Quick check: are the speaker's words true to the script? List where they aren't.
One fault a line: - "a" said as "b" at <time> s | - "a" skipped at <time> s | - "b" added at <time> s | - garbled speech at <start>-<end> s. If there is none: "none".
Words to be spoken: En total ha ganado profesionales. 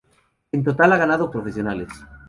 none